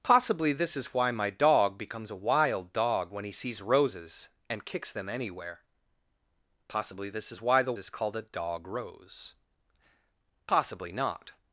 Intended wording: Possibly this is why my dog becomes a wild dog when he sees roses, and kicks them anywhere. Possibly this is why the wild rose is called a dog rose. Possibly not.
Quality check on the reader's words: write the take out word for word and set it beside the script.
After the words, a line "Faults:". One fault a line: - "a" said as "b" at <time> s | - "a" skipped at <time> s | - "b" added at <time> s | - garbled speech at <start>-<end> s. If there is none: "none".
Possibly this is why my dog becomes a wild dog when he sees roses, and kicks them anywhere. Possibly this is why the is called a dog rose. Possibly not.
Faults:
- "wild rose" skipped at 7.7 s